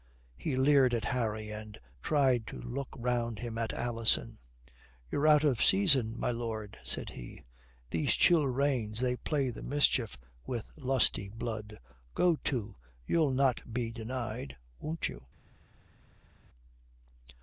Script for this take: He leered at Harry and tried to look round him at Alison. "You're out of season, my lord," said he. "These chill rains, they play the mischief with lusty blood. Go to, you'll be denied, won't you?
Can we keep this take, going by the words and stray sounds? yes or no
no